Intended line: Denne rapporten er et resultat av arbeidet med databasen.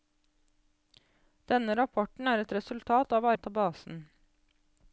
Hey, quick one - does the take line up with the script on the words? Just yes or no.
no